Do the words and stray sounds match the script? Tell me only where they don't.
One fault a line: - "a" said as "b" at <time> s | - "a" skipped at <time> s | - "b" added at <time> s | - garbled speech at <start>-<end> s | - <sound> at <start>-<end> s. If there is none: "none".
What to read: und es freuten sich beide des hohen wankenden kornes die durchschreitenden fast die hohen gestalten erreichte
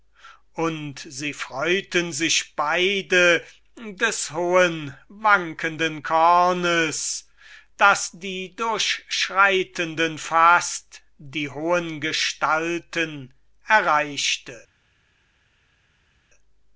- "es" said as "sie" at 1.1 s
- "das" added at 7.8 s